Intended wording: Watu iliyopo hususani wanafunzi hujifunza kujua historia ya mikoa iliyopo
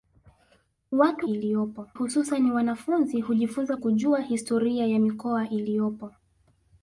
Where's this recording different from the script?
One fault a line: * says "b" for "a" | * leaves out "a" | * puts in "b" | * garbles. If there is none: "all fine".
all fine